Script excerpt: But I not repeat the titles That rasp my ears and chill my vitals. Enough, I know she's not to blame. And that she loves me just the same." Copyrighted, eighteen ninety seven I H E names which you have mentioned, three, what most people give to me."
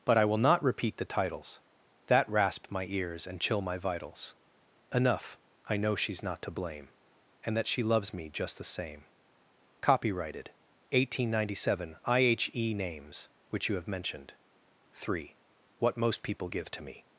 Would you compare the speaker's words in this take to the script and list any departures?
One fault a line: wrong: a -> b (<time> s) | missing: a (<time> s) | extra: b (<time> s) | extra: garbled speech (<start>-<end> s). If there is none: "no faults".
extra: will (0.2 s)